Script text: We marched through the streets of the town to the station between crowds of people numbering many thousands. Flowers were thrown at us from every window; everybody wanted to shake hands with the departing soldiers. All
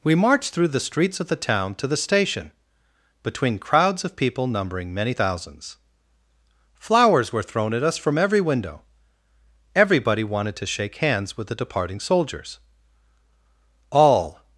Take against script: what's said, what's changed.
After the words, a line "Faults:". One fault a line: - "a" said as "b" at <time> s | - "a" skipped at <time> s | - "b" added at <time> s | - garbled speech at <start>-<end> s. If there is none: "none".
We marched through the streets of the town to the station between crowds of people numbering many thousands. Flowers were thrown at us from every window; everybody wanted to shake hands with the departing soldiers. All
Faults:
none